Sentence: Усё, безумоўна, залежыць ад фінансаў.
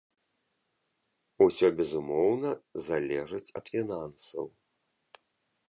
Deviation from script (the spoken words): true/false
false